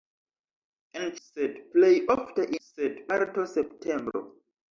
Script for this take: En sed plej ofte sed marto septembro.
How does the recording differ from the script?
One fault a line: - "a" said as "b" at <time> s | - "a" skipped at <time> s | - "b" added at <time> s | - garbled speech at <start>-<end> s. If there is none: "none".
none